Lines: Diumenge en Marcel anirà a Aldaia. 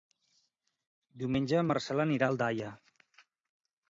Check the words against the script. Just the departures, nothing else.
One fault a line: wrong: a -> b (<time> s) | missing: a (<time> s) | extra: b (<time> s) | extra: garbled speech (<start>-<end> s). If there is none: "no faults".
no faults